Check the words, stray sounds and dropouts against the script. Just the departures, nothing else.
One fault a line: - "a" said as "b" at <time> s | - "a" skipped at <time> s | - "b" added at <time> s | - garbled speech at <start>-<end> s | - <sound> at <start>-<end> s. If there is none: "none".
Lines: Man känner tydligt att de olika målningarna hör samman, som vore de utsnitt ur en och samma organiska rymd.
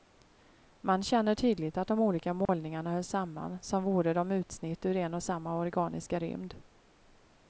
- dropout at 2.5-2.5 s